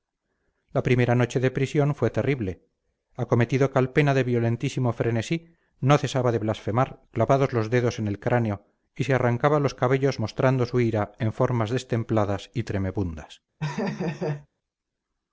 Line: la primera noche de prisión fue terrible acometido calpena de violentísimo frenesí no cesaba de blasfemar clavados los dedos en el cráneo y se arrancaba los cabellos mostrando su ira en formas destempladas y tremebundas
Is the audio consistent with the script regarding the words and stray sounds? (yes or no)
no